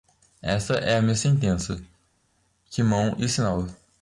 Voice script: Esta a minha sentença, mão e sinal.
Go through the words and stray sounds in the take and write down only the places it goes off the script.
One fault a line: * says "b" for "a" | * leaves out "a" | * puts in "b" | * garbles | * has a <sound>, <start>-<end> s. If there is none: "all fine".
* puts in "é"
* puts in "que"